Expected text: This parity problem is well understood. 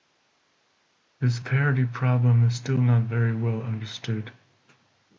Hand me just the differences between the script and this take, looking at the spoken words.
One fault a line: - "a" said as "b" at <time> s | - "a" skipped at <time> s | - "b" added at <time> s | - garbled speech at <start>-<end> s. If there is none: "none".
- "still not very" added at 2.5 s